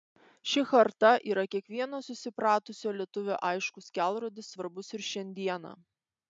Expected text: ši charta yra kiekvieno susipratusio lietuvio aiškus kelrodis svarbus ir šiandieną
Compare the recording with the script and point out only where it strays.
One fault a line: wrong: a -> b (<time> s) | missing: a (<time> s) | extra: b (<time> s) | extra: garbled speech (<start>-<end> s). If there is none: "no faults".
no faults